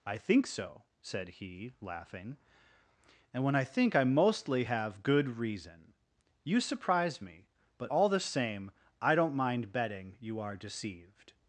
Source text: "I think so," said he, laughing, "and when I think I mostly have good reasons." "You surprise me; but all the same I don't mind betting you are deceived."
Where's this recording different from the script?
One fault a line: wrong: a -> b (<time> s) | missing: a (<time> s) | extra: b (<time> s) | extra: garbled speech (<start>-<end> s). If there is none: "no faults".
wrong: reasons -> reason (5.4 s)